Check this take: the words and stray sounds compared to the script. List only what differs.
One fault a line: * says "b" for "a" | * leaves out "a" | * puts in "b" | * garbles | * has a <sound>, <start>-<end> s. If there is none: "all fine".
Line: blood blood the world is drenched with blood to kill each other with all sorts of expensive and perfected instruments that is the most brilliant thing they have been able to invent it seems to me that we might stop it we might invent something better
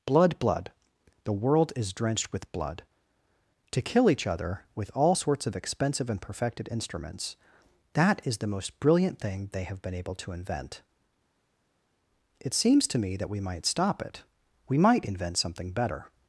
all fine